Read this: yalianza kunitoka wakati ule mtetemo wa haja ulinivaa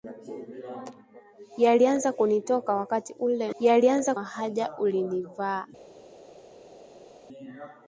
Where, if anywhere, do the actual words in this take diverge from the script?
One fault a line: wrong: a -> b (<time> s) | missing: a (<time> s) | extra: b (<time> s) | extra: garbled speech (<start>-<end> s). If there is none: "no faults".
wrong: mtetemo -> yalianza (3.6 s)